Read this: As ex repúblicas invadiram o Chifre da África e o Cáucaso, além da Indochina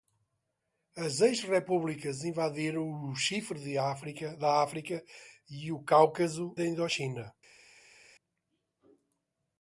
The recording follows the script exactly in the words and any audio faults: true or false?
false